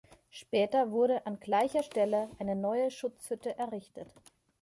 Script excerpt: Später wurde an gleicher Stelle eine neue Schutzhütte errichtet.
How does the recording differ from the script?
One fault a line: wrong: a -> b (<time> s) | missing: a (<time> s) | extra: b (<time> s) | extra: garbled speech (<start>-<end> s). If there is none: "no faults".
no faults